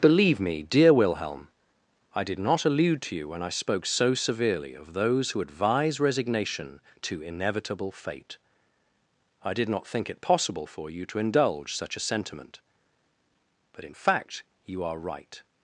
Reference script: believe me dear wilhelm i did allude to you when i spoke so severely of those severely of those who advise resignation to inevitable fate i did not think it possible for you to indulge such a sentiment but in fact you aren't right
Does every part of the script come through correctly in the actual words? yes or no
no